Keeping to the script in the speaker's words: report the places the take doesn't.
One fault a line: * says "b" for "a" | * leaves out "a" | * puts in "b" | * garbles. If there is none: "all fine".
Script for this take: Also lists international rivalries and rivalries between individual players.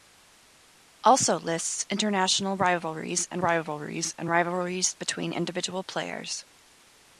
* puts in "and rivalries"